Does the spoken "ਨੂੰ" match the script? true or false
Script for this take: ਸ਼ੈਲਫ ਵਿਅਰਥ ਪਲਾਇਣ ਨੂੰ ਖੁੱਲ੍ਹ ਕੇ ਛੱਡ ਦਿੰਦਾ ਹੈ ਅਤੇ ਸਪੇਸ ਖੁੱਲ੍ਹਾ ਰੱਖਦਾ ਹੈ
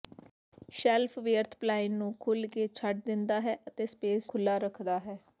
true